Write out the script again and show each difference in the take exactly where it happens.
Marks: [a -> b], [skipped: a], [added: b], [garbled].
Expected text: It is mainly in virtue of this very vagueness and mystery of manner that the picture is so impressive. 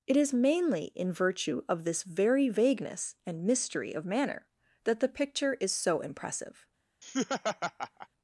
It is mainly in virtue of this very vagueness and mystery of manner that the picture is so impressive.